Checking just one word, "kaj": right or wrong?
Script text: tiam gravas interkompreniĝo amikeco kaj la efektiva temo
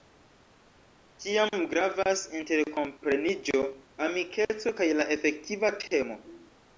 right